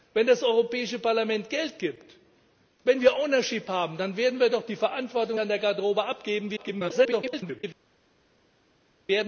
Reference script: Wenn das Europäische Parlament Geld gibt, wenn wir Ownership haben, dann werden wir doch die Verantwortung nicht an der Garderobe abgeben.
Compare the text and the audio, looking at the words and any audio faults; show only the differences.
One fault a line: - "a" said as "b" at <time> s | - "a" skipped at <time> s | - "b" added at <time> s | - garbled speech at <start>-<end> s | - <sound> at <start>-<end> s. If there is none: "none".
- "nicht" skipped at 5.4 s
- garbled speech at 6.6-7.6 s